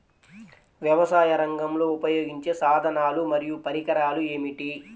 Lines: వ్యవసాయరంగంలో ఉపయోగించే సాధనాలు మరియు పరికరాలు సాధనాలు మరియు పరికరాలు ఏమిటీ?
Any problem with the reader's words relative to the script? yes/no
yes